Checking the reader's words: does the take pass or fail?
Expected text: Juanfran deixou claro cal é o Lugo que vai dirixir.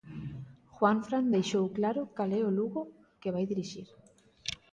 pass